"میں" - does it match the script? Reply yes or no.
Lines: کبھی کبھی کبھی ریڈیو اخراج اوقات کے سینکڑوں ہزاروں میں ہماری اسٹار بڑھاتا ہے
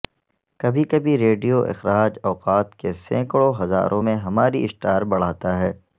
yes